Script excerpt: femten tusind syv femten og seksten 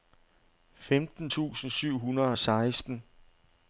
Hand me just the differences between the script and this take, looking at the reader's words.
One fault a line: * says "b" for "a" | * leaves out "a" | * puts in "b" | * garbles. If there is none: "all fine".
* says "hundrede" for "femten"